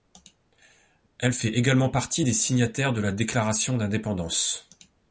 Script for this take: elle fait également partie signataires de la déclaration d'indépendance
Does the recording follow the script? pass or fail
fail